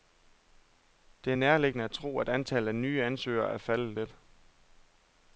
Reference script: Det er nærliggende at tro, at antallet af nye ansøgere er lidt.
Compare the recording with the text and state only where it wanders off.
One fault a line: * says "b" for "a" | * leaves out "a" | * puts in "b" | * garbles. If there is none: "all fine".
* puts in "faldet"